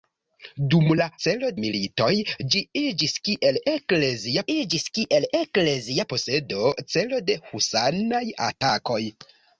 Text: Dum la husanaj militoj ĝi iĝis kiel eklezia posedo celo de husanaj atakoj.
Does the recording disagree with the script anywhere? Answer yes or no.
yes